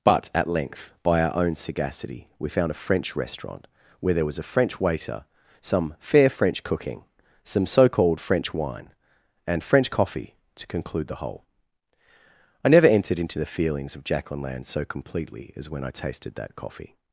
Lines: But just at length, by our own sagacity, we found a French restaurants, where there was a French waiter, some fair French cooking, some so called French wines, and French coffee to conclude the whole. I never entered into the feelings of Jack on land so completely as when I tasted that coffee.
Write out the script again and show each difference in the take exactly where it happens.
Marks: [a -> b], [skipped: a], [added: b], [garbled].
But [skipped: just] at length, by our own sagacity, we found a French [restaurants, -> restaurant] where there was a French waiter, some fair French cooking, some so called French [wines, -> wine] and French coffee to conclude the whole. I never entered into the feelings of Jack on land so completely as when I tasted that coffee.